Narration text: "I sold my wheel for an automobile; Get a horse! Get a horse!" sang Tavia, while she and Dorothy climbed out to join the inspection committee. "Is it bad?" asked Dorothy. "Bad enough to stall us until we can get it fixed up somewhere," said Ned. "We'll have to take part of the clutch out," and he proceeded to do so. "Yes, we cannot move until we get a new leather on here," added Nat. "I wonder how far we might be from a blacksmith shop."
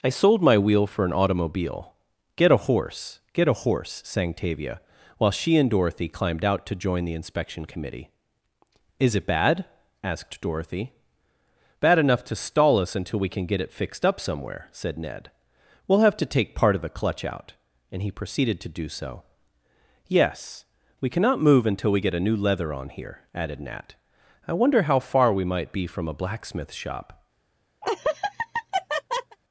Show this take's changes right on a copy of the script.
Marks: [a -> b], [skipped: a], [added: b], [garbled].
"I sold my wheel for an automobile; Get a horse! Get a horse!" sang Tavia, while she and Dorothy climbed out to join the inspection committee. "Is it bad?" asked Dorothy. "Bad enough to stall us until we can get it fixed up somewhere," said Ned. "We'll have to take part of the clutch out," and he proceeded to do so. "Yes, we cannot move until we get a new leather on here," added Nat. "I wonder how far we might be from a blacksmith shop."